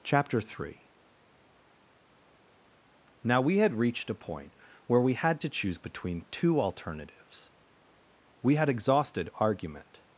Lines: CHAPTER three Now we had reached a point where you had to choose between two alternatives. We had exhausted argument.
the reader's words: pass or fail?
fail